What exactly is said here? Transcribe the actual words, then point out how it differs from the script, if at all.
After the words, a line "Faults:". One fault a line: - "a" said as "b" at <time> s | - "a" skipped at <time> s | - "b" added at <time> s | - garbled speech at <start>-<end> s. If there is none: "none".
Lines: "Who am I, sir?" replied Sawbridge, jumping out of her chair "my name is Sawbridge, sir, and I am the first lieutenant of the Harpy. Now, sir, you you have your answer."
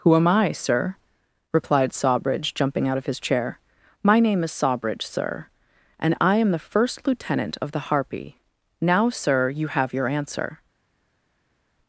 "Who am I, sir?" replied Sawbridge, jumping out of his chair "my name is Sawbridge, sir, and I am the first lieutenant of the Harpy. Now, sir, you have your answer."
Faults:
- "her" said as "his" at 3.0 s
- "you" skipped at 9.7 s